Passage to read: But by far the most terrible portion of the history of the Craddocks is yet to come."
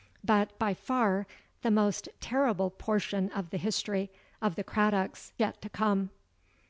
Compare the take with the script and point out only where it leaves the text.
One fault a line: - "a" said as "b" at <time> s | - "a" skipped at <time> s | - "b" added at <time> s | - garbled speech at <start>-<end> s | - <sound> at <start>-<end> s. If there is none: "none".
- "is" skipped at 5.3 s